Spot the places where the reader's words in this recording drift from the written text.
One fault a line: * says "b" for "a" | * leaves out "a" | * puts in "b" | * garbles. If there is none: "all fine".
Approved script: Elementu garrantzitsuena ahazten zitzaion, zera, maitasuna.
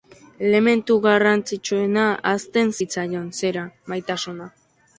all fine